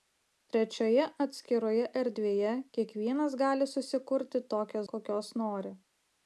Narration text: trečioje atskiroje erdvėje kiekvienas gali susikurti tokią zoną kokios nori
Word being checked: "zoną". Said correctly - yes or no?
no